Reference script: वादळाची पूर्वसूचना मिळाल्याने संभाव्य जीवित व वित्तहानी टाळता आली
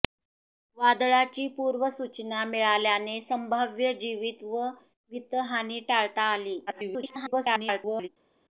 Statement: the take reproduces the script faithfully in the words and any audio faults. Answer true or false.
false